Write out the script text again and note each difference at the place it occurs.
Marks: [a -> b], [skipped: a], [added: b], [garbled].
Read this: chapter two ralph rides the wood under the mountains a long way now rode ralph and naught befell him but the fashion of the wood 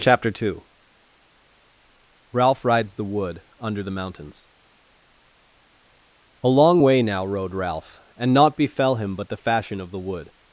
chapter two ralph rides the wood under the mountains a long way now rode ralph and naught befell him but the fashion of the wood